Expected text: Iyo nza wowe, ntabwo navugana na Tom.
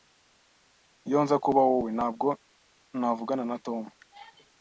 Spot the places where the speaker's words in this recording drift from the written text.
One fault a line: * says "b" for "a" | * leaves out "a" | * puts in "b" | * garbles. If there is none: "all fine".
* puts in "kuba"